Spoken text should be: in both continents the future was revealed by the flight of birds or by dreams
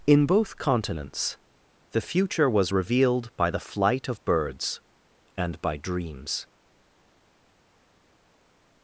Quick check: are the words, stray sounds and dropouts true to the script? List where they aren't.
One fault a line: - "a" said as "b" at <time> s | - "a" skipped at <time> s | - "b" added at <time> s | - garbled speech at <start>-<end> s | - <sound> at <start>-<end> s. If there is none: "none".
- "or" said as "and" at 5.4 s